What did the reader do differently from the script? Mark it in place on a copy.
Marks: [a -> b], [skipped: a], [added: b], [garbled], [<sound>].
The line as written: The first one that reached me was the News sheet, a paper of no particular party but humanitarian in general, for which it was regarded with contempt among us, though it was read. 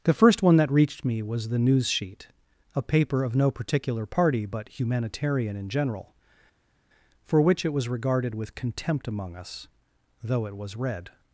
The first one that reached me was the News sheet, a paper of no particular party but humanitarian in general, for which it was regarded with contempt among us, though it was read.